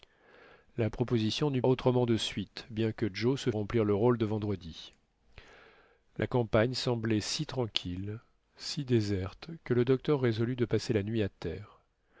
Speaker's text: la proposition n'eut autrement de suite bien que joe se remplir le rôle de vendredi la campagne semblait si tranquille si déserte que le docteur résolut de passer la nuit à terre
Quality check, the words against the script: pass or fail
pass